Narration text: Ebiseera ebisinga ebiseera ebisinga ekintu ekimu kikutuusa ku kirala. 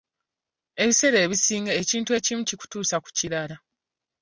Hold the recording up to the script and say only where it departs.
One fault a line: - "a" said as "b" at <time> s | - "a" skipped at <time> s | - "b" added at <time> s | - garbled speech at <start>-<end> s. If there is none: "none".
- "ebiseera ebisinga" skipped at 1.7 s